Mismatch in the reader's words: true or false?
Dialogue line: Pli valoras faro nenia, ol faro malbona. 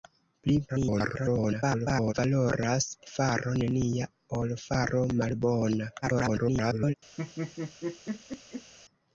true